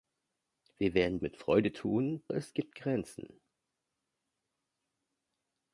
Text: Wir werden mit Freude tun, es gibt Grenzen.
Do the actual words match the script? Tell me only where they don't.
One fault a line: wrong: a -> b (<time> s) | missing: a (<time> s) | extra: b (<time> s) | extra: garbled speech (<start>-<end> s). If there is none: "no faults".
no faults